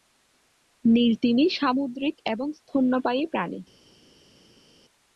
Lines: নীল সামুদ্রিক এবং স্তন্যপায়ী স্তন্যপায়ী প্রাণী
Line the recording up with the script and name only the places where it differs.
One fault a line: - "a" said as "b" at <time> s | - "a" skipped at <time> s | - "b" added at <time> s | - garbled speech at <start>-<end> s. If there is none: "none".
- "তিমি" added at 1.2 s
- "স্তন্যপায়ী" skipped at 3.2 s